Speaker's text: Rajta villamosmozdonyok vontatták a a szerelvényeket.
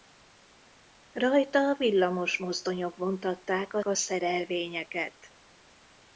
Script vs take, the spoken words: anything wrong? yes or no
no